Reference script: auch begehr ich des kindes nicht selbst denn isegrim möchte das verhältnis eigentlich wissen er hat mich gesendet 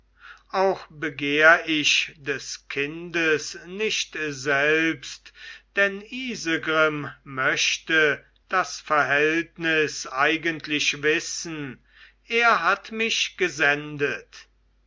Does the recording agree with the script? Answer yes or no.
yes